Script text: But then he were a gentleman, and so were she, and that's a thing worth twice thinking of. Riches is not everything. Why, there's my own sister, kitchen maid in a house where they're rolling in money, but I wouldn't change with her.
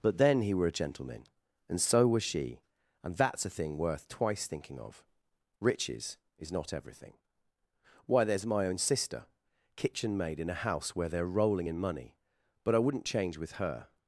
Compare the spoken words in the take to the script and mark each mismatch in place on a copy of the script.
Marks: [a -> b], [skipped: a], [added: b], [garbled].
But then he were a gentleman, and so [were -> was] she, and that's a thing worth twice thinking of. Riches is not everything. Why, there's my own sister, kitchen maid in a house where they're rolling in money, but I wouldn't change with her.